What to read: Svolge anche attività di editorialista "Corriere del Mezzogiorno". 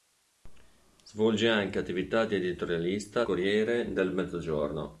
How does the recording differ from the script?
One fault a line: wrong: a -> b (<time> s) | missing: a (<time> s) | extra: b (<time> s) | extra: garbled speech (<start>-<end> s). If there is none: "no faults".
no faults